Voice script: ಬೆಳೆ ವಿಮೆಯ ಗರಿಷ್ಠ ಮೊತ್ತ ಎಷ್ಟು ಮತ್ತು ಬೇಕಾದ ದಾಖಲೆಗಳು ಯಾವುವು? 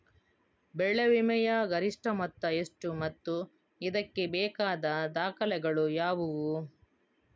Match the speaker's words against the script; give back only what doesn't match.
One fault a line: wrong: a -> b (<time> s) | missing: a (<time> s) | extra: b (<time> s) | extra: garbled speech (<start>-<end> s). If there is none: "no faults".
extra: ಇದಕ್ಕೆ (3.8 s)